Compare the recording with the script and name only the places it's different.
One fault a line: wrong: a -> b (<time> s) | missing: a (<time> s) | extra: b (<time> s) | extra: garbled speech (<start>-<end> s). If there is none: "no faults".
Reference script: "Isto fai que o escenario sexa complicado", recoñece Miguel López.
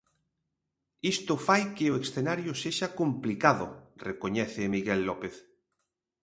no faults